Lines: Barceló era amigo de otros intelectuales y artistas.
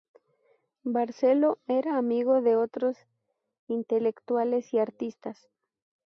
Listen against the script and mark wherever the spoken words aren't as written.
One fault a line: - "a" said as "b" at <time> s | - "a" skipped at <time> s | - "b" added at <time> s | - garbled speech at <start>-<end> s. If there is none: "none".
none